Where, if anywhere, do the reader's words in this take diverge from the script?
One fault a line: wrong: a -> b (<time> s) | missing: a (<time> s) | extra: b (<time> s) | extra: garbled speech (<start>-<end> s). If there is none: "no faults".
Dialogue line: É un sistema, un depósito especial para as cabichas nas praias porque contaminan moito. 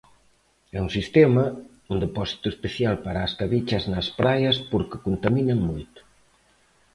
no faults